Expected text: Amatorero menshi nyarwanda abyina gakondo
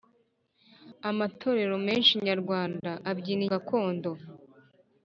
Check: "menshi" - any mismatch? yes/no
no